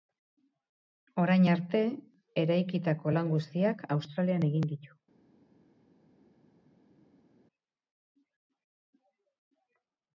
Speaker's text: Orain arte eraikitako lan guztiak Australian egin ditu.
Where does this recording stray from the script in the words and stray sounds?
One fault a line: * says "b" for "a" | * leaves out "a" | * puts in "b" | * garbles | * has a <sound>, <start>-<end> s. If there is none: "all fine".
all fine